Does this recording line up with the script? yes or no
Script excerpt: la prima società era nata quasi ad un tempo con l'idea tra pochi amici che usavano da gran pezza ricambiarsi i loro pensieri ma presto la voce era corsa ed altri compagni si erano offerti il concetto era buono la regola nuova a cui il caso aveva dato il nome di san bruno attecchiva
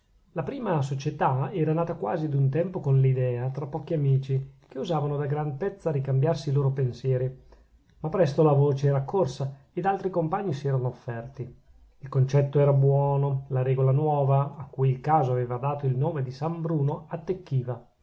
yes